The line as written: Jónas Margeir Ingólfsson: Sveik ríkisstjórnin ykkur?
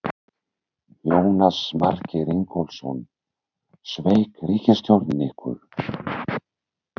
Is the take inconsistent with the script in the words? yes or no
no